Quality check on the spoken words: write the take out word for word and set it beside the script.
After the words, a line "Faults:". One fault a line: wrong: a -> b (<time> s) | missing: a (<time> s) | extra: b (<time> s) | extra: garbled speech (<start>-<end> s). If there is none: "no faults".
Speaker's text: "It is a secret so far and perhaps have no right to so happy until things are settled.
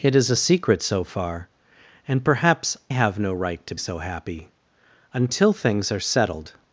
"It is a secret so far and perhaps have no right to so happy until things are settled.
Faults:
no faults